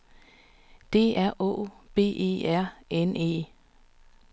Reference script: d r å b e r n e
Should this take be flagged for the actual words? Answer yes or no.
no